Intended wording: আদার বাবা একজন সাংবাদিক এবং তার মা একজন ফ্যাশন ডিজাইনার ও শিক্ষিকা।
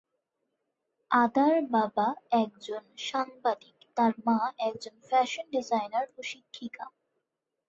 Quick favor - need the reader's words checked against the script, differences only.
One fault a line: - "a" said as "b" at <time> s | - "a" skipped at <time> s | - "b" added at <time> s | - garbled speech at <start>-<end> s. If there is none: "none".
- "এবং" skipped at 3.8 s